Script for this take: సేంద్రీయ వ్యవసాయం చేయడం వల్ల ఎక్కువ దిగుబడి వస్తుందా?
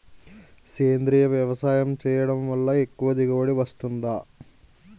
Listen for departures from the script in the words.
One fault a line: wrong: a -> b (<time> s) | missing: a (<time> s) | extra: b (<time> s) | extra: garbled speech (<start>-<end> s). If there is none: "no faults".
no faults